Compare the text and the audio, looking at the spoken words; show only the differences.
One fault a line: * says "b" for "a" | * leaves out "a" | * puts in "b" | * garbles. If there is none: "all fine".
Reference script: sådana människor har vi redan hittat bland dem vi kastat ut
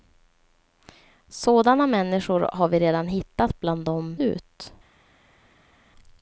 * leaves out "vi kastat"